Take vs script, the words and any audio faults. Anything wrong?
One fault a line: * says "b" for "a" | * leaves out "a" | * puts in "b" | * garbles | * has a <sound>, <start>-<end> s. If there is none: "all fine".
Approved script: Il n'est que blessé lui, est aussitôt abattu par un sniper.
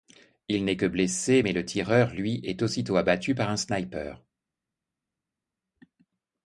* puts in "mais le tireur"